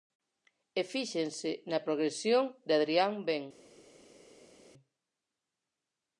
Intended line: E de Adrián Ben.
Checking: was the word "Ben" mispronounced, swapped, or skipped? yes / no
no